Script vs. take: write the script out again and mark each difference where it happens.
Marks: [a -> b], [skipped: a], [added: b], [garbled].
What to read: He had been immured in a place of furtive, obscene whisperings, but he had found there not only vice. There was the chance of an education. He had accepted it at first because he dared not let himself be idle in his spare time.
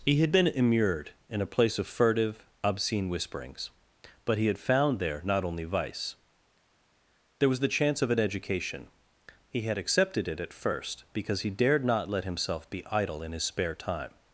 He had been immured in a place of furtive, obscene whisperings, but he had found there not only vice. There was the chance of an education. He had accepted it at first because he dared not let himself be idle in his spare time.